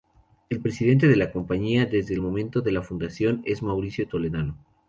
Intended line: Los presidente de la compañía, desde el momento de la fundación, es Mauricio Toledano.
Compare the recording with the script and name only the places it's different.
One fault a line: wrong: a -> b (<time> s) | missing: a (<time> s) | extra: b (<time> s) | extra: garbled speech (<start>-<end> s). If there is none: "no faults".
wrong: Los -> El (0.5 s)